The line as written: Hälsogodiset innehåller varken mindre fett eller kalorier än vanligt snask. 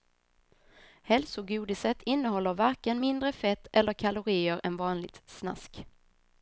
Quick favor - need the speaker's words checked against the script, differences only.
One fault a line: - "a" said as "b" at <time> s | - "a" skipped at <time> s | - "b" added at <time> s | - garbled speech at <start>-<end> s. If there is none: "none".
none